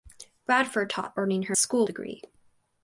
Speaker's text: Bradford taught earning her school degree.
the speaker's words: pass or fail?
pass